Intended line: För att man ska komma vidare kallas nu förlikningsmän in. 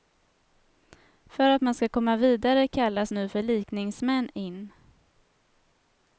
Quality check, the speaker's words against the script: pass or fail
pass